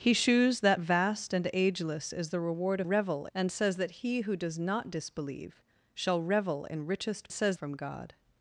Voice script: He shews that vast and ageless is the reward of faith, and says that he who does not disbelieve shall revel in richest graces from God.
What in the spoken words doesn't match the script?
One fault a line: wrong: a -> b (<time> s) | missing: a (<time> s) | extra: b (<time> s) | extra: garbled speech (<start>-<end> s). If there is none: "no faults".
wrong: faith -> revel (2.8 s)
wrong: graces -> says (7.3 s)